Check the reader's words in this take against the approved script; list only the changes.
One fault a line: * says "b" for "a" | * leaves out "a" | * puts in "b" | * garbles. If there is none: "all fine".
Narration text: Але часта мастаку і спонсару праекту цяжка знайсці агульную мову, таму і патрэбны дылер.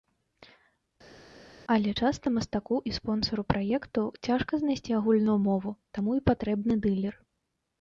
all fine